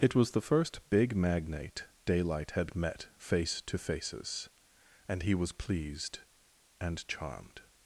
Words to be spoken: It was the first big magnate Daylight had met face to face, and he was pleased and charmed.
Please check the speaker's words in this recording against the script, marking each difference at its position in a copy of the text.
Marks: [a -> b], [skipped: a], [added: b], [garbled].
It was the first big magnate Daylight had met face to [face, -> faces] and he was pleased and charmed.